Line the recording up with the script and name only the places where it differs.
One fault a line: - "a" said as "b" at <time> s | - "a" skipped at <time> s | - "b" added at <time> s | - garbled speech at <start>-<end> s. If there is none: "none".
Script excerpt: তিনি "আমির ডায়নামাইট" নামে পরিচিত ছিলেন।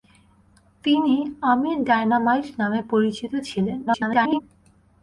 - garbled speech at 3.9-4.4 s